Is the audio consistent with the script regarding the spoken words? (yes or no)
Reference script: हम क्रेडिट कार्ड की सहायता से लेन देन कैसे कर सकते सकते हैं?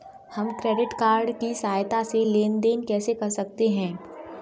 no